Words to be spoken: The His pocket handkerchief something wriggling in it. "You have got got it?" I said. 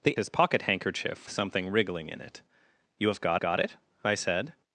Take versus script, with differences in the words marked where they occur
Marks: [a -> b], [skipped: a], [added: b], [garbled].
The His pocket handkerchief something wriggling in it. "You have got got it?" I said.